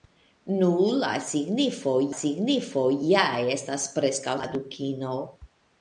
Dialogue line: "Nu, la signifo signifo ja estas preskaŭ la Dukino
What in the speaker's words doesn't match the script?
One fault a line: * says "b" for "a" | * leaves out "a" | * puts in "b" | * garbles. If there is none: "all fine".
all fine